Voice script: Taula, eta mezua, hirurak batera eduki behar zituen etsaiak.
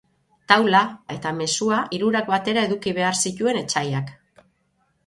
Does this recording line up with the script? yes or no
yes